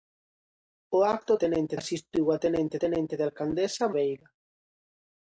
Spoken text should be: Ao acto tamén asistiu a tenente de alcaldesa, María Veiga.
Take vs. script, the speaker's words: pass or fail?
fail